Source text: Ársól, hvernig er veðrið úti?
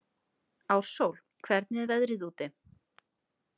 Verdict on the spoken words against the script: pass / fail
pass